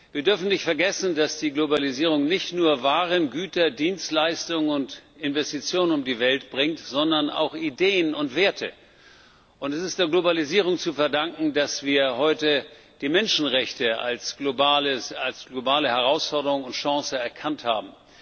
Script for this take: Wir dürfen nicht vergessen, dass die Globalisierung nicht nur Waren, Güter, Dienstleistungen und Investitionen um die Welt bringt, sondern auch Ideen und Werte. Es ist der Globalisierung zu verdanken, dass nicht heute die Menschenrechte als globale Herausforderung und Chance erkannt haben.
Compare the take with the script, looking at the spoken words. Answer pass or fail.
fail